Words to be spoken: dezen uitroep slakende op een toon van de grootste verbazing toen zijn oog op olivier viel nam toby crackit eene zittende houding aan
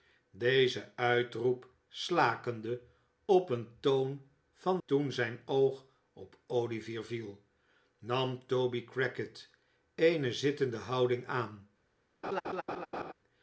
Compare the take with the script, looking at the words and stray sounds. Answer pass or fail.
fail